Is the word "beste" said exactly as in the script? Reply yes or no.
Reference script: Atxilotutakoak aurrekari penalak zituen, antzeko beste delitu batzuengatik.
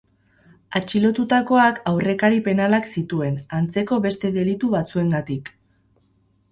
yes